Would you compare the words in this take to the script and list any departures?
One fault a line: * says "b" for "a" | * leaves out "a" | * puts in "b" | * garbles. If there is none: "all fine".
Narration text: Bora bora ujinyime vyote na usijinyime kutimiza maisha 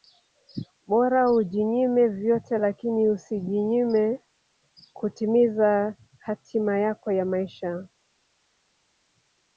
* leaves out "bora"
* says "lakini" for "na"
* puts in "hatima yako ya"